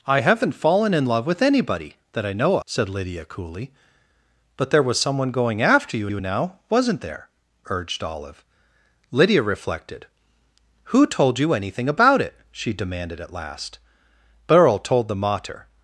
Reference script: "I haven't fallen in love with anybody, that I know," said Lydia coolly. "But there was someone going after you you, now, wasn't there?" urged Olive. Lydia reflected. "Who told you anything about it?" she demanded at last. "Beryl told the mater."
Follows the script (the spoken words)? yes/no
yes